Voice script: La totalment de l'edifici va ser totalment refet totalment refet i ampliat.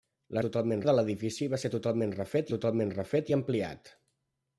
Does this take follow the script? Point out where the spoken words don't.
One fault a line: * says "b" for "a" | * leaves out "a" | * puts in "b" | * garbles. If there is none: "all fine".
all fine